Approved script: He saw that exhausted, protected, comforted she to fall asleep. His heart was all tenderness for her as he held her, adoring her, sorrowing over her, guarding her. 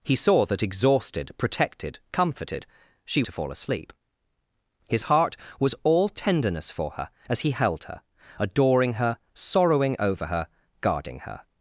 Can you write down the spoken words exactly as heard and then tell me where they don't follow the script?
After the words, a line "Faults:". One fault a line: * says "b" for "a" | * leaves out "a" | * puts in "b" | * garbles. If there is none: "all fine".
He saw that exhausted, protected, comforted she to fall asleep. His heart was all tenderness for her as he held her, adoring her, sorrowing over her, guarding her.
Faults:
all fine